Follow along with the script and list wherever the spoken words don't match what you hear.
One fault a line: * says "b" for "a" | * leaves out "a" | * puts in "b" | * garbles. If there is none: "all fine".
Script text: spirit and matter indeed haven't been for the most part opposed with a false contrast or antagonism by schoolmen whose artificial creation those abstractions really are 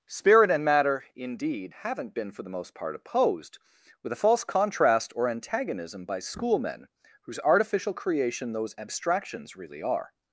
all fine